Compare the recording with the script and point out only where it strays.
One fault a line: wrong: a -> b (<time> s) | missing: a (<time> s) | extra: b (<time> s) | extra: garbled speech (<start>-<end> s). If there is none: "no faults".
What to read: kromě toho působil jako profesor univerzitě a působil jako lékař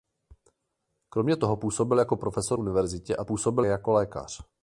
no faults